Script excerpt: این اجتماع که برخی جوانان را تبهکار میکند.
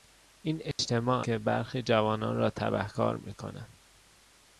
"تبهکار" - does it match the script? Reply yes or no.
yes